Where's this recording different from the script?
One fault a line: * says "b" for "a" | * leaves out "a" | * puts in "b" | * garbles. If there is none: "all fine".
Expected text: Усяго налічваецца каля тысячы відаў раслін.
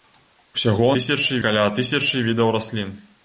* says "тысячы" for "налічваецца"